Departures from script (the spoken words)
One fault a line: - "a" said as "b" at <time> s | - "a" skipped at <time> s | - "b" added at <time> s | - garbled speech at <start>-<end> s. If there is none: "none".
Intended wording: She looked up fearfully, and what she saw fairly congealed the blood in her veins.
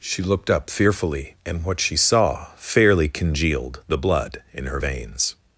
none